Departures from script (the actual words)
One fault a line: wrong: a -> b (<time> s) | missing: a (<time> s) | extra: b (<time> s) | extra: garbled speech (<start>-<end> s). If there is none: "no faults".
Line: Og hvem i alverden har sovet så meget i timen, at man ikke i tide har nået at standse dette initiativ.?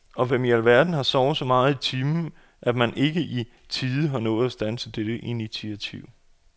no faults